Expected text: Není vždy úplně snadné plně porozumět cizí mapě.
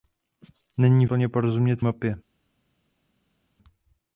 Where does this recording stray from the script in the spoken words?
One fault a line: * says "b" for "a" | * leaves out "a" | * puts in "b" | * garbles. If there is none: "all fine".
* leaves out "vždy úplně snadné"
* leaves out "cizí"